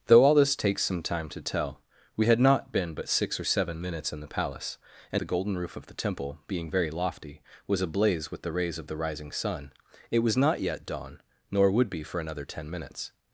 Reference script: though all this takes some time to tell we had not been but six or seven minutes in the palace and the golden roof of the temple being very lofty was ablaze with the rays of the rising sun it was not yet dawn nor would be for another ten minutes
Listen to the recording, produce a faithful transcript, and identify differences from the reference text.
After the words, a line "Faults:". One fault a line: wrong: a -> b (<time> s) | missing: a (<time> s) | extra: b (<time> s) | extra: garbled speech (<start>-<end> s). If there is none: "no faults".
though all this takes some time to tell we had not been but six or seven minutes in the palace and the golden roof of the temple being very lofty was ablaze with the rays of the rising sun it was not yet dawn nor would be for another ten minutes
Faults:
no faults